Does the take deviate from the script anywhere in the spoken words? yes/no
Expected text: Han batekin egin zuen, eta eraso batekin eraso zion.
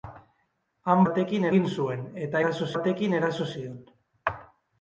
no